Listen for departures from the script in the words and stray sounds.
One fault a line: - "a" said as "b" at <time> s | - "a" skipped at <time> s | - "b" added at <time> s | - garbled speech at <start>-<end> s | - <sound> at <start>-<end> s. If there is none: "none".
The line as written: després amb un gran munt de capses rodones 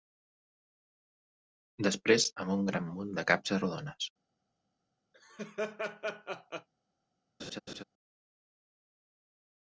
- laugh at 5.1-6.7 s
- laugh at 7.4-7.8 s